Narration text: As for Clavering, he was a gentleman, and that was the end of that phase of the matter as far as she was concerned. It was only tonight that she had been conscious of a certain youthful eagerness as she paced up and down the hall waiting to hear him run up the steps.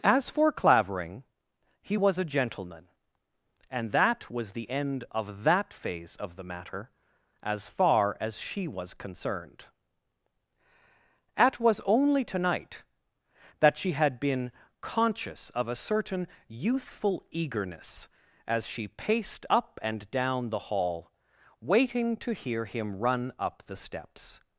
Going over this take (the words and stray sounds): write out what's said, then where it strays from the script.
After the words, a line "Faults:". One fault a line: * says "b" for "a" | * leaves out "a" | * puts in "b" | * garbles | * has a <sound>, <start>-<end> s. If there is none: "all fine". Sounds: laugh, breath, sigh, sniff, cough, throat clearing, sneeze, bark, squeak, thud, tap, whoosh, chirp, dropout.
As for Clavering, he was a gentleman, and that was the end of that phase of the matter as far as she was concerned. At was only tonight that she had been conscious of a certain youthful eagerness as she paced up and down the hall waiting to hear him run up the steps.
Faults:
* says "At" for "It"